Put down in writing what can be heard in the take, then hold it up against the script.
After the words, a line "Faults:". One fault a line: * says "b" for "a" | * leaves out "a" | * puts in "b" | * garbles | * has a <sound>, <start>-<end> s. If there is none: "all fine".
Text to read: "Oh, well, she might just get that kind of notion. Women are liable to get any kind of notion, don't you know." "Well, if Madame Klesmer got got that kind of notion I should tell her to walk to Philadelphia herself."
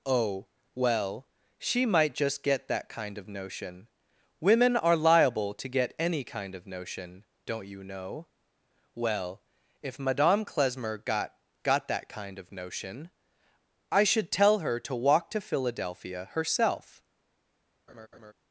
"Oh, well, she might just get that kind of notion. Women are liable to get any kind of notion, don't you know." "Well, if Madame Klesmer got got that kind of notion I should tell her to walk to Philadelphia herself."
Faults:
* has a laugh, 17.9-18.3 s